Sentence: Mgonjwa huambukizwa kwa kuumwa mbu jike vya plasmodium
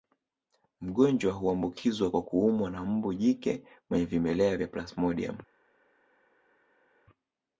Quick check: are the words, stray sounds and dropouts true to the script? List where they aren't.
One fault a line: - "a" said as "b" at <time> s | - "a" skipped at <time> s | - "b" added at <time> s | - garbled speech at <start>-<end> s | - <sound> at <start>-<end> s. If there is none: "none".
- "na" added at 2.7 s
- "mwenye vimelea" added at 3.9 s